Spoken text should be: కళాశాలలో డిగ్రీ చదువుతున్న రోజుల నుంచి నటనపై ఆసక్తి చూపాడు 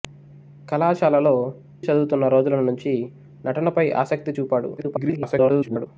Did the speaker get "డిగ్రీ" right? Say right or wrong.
wrong